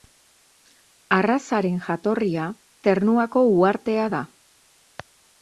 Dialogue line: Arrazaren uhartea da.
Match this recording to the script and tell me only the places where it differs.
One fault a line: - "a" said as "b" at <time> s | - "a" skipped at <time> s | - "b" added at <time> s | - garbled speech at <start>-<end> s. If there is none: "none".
- "jatorria Ternuako" added at 1.9 s